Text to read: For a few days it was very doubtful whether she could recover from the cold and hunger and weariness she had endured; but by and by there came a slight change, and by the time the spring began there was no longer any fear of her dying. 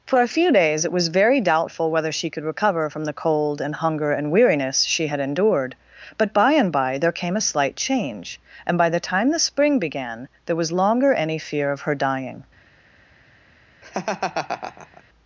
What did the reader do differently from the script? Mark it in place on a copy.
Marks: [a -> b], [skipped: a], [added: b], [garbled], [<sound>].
For a few days it was very doubtful whether she could recover from the cold and hunger and weariness she had endured; but by and by there came a slight change, and by the time the spring began there was [skipped: no] longer any fear of her dying. [laugh]